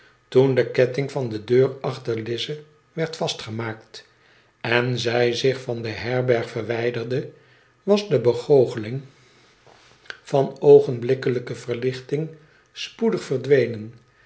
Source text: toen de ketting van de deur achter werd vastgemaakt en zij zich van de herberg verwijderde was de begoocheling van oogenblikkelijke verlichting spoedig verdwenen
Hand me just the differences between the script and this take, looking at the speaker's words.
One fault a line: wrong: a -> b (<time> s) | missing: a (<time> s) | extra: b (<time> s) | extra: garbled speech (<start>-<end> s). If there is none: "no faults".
extra: lize (2.2 s)